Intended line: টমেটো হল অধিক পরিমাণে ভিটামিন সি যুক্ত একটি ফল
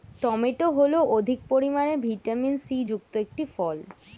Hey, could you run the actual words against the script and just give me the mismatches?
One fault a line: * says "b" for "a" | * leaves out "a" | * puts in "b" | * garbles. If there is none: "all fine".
all fine